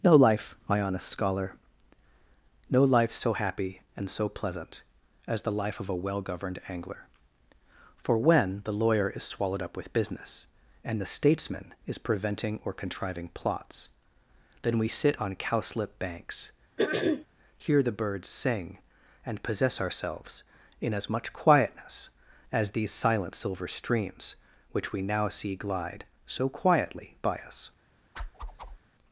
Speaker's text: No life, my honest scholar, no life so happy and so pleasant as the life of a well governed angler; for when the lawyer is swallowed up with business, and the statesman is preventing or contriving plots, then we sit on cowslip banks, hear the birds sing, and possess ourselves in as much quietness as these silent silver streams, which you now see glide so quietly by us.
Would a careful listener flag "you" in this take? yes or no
yes